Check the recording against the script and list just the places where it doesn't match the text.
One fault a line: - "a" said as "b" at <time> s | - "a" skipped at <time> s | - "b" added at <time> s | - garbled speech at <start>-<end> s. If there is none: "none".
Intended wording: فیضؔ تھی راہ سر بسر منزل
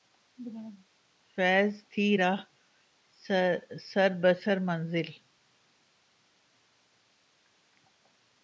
none